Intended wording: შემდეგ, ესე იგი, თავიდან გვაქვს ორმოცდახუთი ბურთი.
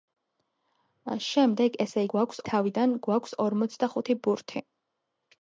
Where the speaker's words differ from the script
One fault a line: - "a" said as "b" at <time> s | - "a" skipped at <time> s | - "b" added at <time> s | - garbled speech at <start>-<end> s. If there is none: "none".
- "იგი" said as "გვაქვს" at 2.2 s